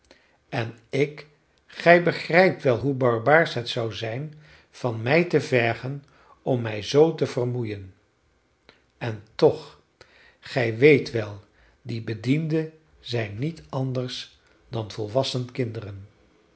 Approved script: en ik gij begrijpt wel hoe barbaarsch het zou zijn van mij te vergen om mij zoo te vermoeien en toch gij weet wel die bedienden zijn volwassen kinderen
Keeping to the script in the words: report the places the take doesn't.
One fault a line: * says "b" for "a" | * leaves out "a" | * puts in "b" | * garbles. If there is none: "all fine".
* puts in "niet anders dan"